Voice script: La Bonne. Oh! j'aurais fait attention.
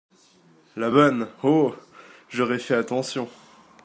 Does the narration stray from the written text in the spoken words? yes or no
no